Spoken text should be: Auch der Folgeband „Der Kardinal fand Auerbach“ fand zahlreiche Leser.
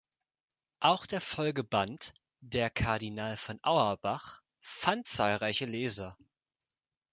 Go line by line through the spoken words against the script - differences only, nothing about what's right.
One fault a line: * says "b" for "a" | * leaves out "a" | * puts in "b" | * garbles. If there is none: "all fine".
* says "von" for "fand"